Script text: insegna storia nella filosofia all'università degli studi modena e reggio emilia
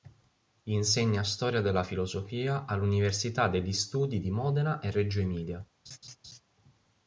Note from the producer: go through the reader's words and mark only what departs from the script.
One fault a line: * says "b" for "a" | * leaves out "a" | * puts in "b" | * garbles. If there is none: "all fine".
* says "della" for "nella"
* puts in "di"